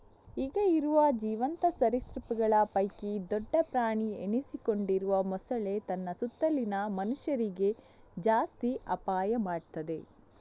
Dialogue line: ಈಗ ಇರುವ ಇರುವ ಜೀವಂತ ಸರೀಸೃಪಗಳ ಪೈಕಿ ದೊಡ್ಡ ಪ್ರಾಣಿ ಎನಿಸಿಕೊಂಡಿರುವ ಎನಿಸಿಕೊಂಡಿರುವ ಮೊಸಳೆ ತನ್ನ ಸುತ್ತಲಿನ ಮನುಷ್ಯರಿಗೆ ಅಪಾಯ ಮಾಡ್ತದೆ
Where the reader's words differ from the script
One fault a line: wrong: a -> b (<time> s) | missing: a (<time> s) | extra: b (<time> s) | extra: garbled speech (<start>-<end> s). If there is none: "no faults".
missing: ಇರುವ (1.0 s)
missing: ಎನಿಸಿಕೊಂಡಿರುವ (5.2 s)
extra: ಜಾಸ್ತಿ (8.2 s)